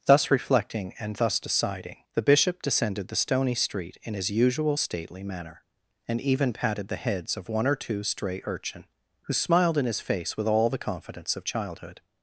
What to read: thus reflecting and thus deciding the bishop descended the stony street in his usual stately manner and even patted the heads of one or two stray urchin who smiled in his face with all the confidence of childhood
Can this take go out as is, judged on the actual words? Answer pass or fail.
pass